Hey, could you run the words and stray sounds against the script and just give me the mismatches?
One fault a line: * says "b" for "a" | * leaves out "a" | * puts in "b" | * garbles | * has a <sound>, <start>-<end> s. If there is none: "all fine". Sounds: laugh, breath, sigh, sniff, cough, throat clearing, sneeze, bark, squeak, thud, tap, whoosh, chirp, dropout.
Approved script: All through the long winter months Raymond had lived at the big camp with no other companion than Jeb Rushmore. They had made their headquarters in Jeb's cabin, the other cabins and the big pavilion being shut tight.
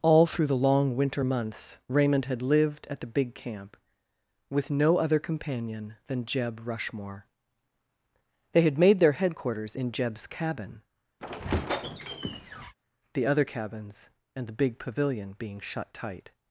* has a squeak, 11.2-12.7 s